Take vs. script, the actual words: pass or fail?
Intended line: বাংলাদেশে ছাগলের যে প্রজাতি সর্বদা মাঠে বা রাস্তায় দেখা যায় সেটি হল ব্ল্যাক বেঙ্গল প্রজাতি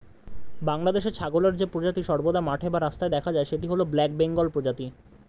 pass